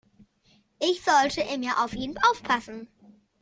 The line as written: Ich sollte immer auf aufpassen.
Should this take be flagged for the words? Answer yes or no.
yes